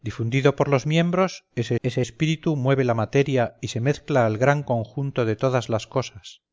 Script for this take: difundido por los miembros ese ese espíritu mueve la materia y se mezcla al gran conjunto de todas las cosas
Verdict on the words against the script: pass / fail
pass